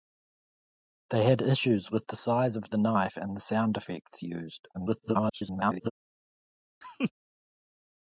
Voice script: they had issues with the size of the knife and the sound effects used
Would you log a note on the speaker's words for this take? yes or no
yes